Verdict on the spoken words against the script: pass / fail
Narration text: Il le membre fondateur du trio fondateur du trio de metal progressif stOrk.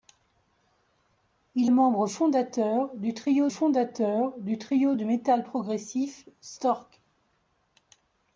pass